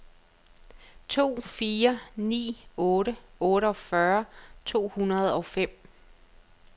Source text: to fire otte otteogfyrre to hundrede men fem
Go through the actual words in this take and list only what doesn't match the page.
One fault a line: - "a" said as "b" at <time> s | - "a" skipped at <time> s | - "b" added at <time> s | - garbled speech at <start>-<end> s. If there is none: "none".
- "ni" added at 2.3 s
- "men" said as "og" at 5.3 s